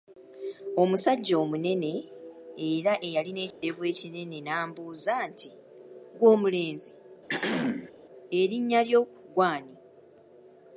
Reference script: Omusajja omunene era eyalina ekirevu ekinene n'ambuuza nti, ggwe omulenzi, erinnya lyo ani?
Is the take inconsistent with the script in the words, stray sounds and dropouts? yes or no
yes